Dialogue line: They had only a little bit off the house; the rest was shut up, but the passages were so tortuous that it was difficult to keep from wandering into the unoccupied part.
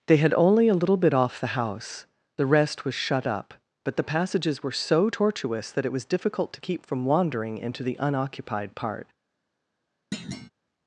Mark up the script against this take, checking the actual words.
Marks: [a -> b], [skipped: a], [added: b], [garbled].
They had only a little bit off the house; the rest was shut up, but the passages were so tortuous that it was difficult to keep from wandering into the unoccupied part.